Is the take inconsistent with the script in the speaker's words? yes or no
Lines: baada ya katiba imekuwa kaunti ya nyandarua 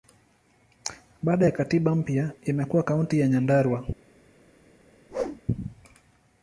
yes